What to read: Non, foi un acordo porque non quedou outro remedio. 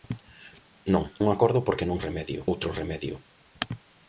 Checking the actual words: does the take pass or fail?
fail